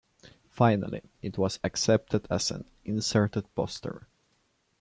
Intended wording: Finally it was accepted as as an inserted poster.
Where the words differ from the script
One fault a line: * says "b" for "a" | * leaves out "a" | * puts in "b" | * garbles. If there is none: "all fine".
* leaves out "as"